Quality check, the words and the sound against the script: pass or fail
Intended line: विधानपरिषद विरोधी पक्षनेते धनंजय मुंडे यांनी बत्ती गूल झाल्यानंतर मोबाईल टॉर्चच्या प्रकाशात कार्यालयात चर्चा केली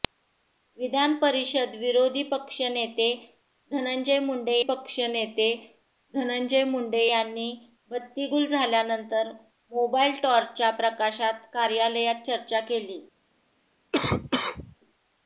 fail